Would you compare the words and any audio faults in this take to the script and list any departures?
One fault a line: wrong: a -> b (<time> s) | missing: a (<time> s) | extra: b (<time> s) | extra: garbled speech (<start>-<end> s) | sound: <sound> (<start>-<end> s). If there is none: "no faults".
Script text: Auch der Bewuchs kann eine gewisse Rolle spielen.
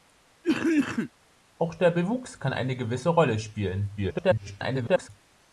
sound: cough (0.4-1.1 s)
extra: garbled speech (4.0-5.1 s)